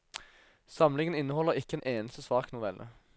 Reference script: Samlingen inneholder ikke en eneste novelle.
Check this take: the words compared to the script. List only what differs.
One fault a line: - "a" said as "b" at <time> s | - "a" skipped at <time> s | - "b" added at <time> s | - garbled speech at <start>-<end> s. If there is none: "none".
- "svak" added at 2.2 s